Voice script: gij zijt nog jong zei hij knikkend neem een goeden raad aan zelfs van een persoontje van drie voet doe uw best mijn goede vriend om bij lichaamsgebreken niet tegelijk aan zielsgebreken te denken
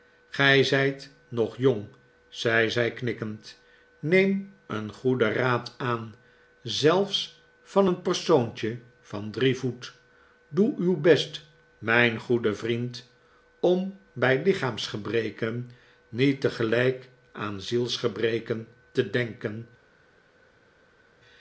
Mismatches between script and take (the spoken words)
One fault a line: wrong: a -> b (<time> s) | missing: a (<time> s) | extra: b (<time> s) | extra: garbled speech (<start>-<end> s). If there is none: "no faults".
wrong: hij -> zij (2.7 s)